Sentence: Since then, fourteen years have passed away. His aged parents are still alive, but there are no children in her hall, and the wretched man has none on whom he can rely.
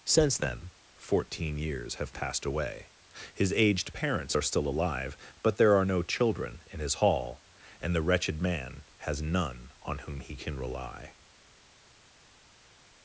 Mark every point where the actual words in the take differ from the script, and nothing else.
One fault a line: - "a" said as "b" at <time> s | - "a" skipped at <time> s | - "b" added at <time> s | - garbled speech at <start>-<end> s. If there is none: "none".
- "her" said as "his" at 6.8 s